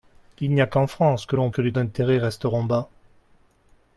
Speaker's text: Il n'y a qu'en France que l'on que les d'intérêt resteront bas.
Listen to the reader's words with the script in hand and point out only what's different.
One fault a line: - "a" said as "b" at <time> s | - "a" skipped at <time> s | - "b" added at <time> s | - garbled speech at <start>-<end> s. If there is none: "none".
none